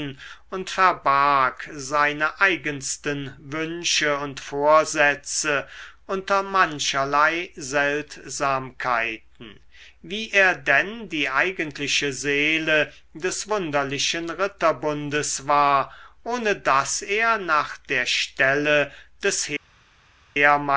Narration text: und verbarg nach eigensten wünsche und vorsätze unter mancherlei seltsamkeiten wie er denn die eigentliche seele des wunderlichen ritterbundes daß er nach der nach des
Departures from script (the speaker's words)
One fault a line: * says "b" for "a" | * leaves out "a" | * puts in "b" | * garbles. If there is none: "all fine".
* says "seine" for "nach"
* puts in "war ohne"
* says "stelle" for "nach"